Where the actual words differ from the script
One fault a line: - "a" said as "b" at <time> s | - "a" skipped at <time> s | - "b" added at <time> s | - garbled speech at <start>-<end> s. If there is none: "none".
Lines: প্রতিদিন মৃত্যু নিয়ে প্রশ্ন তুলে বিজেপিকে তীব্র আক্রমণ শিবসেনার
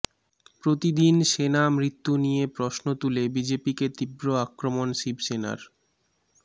- "সেনা" added at 1.3 s